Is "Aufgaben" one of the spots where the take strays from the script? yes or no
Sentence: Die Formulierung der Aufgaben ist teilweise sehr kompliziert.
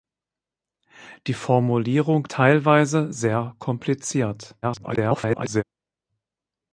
yes